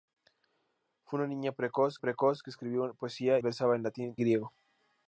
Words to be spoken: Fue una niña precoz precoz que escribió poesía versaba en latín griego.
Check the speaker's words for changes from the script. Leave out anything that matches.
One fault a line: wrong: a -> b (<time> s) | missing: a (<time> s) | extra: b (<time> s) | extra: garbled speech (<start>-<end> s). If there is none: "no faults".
no faults